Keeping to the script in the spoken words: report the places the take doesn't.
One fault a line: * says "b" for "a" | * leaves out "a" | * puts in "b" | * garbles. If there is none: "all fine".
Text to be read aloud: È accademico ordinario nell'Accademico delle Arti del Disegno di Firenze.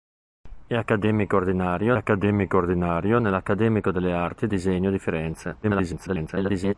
* puts in "accademico ordinario"
* leaves out "del"
* garbles